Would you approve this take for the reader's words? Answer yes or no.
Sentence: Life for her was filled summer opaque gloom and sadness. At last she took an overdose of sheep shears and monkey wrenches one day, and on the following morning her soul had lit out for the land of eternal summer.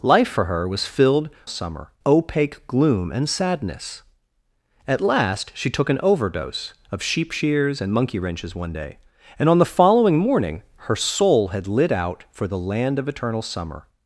yes